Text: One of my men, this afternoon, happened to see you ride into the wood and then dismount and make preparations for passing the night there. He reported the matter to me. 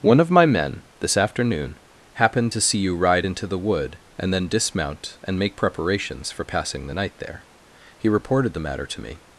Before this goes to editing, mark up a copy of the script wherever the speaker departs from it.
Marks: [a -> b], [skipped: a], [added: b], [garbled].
One of my men, this afternoon, happened to see you ride into the wood and then dismount and make preparations for passing the night there. He reported the matter to me.